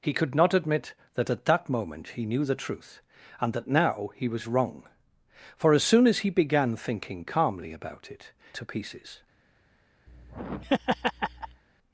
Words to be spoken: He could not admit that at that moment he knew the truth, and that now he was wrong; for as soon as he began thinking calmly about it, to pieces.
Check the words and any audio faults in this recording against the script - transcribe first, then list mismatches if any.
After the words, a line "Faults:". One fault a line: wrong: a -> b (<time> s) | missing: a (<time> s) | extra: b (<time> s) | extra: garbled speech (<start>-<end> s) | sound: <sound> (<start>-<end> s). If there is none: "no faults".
He could not admit that at that moment he knew the truth, and that now he was wrong; for as soon as he began thinking calmly about it, to pieces.
Faults:
sound: laugh (10.1-11.6 s)